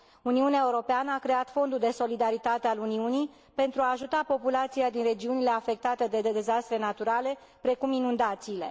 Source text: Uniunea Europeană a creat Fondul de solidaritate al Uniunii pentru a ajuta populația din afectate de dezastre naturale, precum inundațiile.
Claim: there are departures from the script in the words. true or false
true